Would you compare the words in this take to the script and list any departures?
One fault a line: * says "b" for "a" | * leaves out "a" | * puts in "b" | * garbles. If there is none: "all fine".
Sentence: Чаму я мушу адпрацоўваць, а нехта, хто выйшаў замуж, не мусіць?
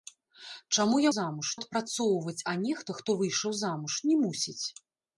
* says "замуж" for "мушу"